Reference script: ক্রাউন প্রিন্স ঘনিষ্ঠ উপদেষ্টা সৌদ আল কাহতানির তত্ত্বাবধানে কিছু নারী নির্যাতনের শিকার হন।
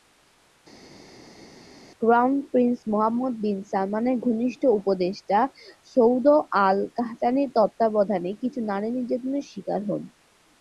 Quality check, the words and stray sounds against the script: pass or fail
fail